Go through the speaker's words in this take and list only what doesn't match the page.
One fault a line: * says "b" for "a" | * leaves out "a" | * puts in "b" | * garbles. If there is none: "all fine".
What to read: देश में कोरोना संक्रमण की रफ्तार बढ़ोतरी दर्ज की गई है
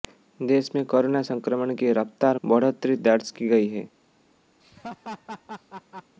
all fine